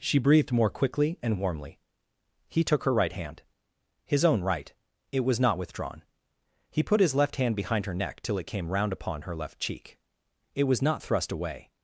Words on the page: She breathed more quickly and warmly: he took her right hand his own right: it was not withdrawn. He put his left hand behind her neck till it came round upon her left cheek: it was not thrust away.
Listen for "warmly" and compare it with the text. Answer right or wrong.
right